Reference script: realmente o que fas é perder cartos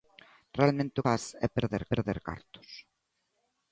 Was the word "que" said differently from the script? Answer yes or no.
yes